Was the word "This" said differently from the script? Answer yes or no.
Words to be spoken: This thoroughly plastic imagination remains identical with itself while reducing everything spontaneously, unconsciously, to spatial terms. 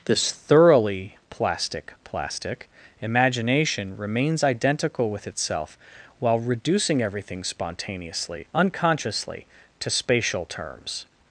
no